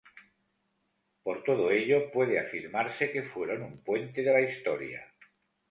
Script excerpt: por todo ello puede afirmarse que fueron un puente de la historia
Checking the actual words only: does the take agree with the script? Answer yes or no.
yes